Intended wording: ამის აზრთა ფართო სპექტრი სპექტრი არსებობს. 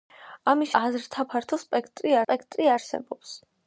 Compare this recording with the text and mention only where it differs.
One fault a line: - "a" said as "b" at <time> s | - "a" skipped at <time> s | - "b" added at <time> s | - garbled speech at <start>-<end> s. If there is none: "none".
none